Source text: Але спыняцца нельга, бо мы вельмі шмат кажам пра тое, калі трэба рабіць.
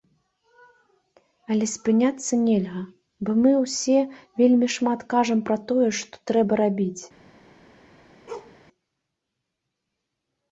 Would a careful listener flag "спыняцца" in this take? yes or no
no